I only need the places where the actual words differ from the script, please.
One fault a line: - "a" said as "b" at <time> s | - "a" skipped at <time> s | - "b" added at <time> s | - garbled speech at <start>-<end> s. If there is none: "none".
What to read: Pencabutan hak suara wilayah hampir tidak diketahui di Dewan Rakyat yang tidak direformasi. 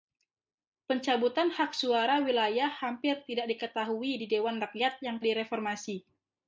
- "tidak" skipped at 5.2 s